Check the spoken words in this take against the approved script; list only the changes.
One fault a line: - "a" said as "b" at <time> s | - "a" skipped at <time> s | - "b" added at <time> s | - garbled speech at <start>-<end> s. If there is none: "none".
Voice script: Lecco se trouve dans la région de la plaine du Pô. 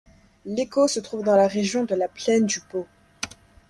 none